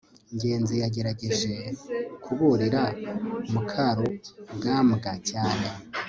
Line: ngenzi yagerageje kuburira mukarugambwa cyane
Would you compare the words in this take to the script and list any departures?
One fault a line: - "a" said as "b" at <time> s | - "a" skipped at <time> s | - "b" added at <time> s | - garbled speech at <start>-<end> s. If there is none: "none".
none